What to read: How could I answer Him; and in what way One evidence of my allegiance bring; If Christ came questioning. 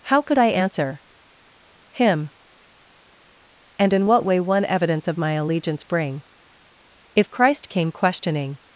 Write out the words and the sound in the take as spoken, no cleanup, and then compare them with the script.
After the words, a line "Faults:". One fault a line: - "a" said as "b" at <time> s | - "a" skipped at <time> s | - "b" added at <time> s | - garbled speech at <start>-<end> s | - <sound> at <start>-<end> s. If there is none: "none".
How could I answer Him; and in what way One evidence of my allegiance bring; If Christ came questioning.
Faults:
none